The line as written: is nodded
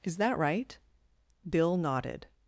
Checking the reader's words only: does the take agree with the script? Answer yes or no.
no